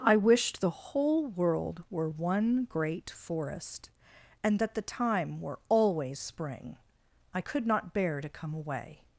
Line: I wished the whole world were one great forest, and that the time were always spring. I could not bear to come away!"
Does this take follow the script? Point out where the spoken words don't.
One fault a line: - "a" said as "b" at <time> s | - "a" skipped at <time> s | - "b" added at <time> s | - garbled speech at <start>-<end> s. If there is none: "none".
none